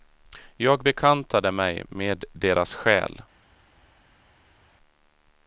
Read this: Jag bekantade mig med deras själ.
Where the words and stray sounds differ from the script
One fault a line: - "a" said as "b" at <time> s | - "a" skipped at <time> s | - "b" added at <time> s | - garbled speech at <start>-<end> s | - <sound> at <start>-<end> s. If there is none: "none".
none